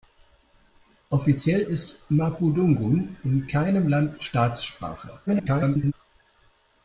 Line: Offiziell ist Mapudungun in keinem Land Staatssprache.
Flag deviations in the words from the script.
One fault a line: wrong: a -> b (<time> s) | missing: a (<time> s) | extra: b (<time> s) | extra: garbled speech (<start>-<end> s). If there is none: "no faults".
extra: garbled speech (5.3-5.9 s)